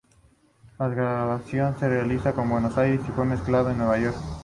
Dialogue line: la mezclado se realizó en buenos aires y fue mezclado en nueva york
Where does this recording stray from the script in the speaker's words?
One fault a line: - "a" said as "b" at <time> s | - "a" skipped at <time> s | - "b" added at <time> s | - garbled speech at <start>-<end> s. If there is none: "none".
- "mezclado" said as "grabación" at 0.9 s